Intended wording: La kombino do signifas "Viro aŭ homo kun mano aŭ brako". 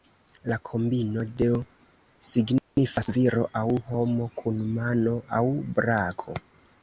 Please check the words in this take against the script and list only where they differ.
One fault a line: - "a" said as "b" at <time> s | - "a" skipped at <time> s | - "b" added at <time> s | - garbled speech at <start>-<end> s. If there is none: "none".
none